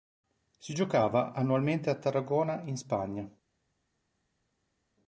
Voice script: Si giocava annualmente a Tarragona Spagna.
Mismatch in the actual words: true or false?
true